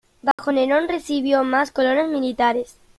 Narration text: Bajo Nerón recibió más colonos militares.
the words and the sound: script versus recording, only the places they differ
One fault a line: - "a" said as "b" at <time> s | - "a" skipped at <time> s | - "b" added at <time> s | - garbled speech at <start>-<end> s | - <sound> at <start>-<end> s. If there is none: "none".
- dropout at 0.3-0.4 s